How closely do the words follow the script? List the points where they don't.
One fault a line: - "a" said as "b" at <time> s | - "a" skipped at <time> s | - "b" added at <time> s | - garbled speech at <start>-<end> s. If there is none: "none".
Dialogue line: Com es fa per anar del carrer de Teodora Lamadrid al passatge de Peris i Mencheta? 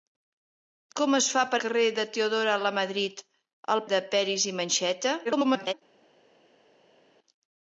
- "anar del" skipped at 1.6 s
- "passatge" skipped at 3.9 s
- garbled speech at 5.2-5.7 s